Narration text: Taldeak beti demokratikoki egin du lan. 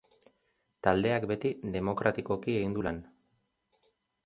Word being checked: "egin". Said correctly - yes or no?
yes